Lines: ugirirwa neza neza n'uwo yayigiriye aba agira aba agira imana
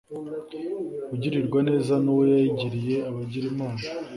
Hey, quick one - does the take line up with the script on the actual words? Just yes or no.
no